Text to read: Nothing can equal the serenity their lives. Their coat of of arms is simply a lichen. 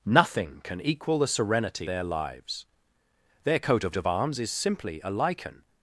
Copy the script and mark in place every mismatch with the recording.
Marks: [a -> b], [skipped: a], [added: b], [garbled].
Nothing can equal the serenity their lives. Their coat of of arms is simply a lichen.